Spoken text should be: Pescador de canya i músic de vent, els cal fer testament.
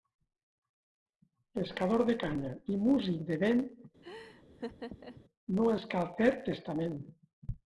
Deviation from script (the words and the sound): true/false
true